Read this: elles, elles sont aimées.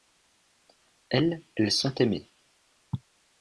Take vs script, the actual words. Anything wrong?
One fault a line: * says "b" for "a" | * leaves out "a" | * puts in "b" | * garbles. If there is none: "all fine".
all fine